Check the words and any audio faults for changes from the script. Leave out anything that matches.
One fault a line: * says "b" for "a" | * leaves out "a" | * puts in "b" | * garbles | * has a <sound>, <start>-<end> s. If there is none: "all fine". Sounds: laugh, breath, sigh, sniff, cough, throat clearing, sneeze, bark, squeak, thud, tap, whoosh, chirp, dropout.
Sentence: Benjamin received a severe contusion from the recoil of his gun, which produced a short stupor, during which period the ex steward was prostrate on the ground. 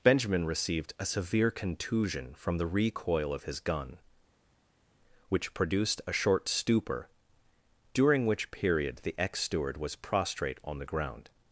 all fine